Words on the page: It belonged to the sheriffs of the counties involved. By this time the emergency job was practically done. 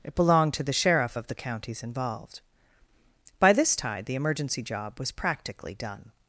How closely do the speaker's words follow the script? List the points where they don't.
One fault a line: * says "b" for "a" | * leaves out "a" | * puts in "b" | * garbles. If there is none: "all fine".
* says "sheriff" for "sheriffs"
* says "tide" for "time"